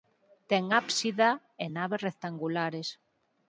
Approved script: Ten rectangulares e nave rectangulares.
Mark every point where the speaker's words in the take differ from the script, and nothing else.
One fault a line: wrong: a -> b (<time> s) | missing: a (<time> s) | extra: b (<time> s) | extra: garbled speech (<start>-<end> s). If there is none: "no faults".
wrong: rectangulares -> ábsida (0.8 s)